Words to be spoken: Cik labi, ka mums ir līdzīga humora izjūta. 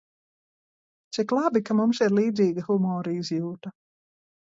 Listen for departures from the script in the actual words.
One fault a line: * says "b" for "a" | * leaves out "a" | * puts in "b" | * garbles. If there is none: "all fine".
all fine